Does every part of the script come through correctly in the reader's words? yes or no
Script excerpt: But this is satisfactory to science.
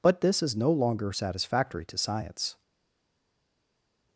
no